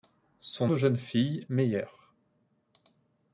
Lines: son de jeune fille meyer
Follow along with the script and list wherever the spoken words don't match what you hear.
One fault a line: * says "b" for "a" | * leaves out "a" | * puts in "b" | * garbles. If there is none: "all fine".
all fine